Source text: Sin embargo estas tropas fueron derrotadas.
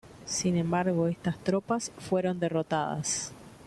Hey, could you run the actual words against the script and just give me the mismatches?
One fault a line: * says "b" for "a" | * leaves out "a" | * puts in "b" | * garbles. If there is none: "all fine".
all fine